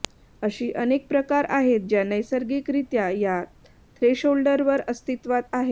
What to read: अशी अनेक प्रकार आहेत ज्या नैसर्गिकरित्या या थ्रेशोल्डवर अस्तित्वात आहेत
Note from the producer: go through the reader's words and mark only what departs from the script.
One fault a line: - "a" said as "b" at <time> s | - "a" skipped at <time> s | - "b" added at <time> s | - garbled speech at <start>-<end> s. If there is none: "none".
none